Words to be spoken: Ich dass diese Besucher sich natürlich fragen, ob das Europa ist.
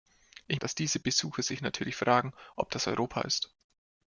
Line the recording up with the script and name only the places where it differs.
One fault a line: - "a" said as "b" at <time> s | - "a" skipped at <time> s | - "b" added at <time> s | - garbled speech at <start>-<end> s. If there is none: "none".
none